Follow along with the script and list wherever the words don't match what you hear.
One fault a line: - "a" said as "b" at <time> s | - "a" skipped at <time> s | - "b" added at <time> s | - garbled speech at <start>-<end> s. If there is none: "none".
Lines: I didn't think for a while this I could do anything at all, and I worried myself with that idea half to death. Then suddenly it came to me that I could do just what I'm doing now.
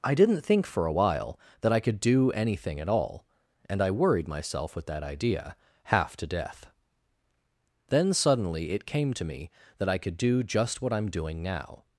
- "this" said as "that" at 1.6 s